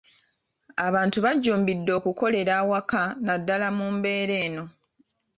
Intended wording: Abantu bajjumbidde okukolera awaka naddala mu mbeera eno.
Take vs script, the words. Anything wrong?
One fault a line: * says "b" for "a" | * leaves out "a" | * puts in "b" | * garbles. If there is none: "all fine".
all fine